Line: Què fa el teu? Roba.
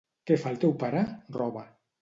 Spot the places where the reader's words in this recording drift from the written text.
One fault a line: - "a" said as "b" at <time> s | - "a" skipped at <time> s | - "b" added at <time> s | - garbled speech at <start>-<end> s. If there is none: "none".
- "pare" added at 0.8 s